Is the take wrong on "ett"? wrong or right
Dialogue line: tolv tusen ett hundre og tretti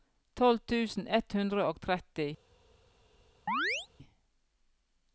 right